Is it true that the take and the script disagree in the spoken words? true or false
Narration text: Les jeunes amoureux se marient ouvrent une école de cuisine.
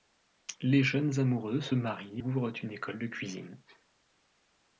false